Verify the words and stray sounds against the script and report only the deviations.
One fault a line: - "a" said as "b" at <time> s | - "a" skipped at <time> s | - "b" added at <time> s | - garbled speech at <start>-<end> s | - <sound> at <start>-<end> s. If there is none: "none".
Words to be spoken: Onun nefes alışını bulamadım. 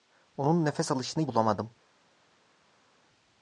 none